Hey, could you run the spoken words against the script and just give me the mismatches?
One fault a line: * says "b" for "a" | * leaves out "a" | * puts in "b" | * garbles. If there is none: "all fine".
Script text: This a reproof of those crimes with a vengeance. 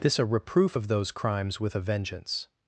all fine